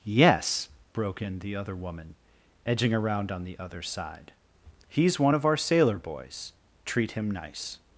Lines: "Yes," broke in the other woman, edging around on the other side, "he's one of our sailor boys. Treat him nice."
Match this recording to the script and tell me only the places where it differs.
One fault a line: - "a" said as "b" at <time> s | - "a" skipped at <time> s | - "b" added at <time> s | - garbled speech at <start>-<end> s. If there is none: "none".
none